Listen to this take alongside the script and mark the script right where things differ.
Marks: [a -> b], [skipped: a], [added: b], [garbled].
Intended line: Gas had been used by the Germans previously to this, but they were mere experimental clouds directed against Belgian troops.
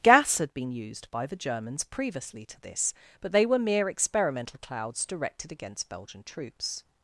Gas had been used by the Germans previously to this, but they were mere experimental clouds directed against Belgian troops.